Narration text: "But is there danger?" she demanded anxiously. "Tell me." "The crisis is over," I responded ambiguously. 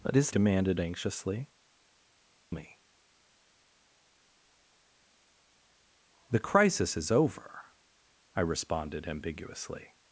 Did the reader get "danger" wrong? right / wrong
wrong